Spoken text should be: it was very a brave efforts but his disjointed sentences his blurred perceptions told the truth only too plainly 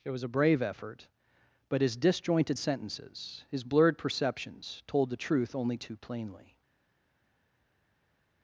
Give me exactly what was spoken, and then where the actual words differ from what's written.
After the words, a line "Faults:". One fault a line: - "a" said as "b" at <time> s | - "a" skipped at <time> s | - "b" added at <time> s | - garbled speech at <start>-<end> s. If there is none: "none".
it was a brave effort but his disjointed sentences his blurred perceptions told the truth only too plainly
Faults:
- "very" skipped at 0.2 s
- "efforts" said as "effort" at 0.6 s